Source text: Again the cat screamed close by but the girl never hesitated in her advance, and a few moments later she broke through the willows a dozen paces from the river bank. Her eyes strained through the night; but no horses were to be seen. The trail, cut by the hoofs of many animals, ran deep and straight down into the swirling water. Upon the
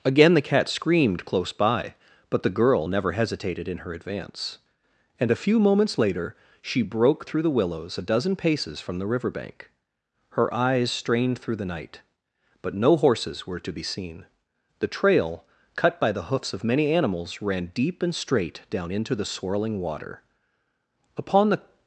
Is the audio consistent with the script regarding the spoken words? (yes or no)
yes